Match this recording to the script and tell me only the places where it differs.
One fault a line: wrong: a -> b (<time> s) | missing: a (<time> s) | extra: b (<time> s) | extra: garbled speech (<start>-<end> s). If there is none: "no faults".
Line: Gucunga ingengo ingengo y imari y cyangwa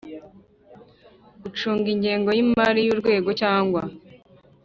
missing: ingengo (2.3 s)
extra: urwego (2.9 s)